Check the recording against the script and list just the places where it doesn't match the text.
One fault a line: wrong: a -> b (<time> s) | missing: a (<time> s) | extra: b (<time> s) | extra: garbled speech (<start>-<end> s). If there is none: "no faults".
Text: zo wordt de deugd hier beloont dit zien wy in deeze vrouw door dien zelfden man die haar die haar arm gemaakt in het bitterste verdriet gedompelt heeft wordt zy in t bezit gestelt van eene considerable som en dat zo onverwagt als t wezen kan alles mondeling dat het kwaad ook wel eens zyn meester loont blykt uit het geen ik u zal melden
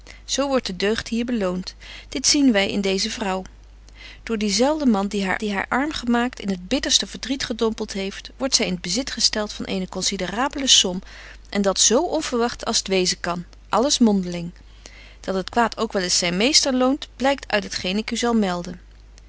no faults